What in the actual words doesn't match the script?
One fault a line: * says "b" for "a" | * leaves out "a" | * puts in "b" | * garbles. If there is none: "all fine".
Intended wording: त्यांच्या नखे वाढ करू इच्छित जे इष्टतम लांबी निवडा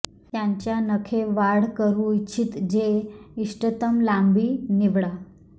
all fine